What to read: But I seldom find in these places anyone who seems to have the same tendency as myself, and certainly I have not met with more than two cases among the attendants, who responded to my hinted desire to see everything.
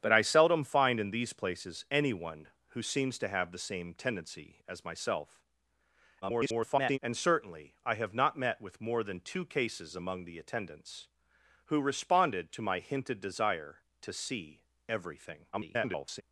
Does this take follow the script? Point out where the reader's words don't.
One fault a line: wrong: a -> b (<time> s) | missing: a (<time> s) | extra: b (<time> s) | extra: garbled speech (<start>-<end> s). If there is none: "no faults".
extra: garbled speech (6.2-7.0 s)
extra: garbled speech (15.5-16.2 s)